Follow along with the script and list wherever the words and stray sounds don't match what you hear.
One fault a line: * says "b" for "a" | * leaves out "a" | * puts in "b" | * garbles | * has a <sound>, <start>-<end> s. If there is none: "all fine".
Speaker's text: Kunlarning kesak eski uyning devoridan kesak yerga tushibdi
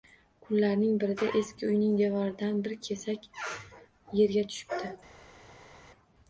* says "birida" for "kesak"
* puts in "bir"